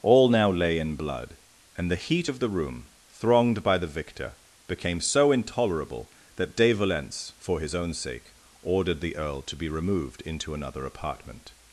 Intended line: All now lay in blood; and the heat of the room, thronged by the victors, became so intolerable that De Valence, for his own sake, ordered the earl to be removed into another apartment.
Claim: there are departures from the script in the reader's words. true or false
true